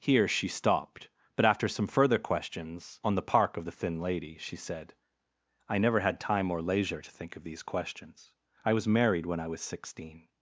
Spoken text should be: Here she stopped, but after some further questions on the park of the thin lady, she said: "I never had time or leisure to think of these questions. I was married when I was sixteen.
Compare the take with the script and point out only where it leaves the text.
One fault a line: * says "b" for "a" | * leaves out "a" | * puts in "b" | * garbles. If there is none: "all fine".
all fine